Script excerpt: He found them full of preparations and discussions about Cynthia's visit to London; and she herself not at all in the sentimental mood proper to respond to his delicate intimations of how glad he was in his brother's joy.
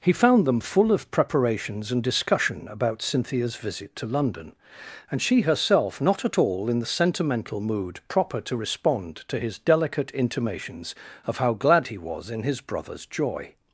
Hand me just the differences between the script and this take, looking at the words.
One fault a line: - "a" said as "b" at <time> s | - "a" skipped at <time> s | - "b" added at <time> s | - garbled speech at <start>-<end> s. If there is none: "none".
- "discussions" said as "discussion" at 2.0 s